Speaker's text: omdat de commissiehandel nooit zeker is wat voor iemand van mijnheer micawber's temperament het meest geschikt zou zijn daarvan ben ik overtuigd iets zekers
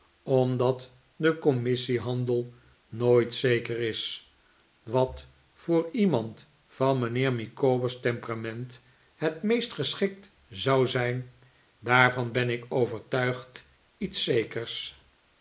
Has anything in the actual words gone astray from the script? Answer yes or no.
no